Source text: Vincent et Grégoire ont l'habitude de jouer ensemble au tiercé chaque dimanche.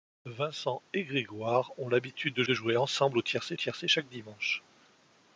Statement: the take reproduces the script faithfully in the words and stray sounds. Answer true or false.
false